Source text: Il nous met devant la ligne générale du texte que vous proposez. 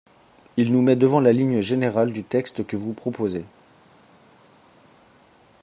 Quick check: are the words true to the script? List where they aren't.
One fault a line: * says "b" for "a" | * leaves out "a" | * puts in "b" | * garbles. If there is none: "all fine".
all fine